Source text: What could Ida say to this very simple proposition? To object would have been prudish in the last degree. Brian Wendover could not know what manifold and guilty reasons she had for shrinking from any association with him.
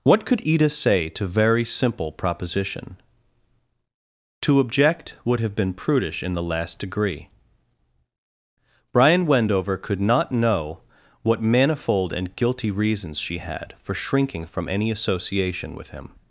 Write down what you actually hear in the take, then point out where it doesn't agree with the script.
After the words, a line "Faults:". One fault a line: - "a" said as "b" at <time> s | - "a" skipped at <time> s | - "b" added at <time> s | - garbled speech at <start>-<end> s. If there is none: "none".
What could Ida say to very simple proposition? To object would have been prudish in the last degree. Brian Wendover could not know what manifold and guilty reasons she had for shrinking from any association with him.
Faults:
- "this" skipped at 1.3 s